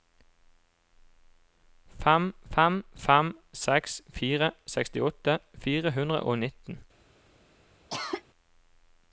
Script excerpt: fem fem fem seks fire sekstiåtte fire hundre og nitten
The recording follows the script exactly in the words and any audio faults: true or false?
false